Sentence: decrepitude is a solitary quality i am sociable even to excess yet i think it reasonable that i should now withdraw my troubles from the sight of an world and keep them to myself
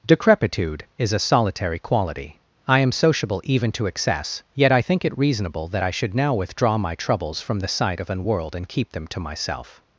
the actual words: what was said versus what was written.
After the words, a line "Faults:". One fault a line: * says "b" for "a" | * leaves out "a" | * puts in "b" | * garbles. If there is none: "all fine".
decrepitude is a solitary quality i am sociable even to excess yet i think it reasonable that i should now withdraw my troubles from the sight of an world and keep them to myself
Faults:
all fine